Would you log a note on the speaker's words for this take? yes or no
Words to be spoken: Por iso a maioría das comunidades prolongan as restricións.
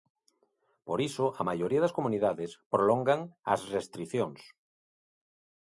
no